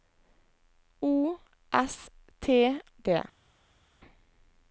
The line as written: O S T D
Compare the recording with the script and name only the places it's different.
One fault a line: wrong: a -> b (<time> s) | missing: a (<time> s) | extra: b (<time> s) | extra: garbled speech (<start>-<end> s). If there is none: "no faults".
no faults